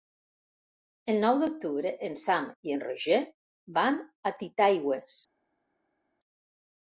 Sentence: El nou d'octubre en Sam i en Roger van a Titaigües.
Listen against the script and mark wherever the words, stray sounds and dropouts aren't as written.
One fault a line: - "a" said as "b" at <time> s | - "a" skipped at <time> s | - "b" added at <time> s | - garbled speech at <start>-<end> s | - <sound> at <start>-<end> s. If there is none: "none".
none